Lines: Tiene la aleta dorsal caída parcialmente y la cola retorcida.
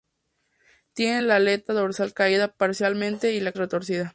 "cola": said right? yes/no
no